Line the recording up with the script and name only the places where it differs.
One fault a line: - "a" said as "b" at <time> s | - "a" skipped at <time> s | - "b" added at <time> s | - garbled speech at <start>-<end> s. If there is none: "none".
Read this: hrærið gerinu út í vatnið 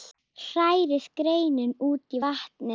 none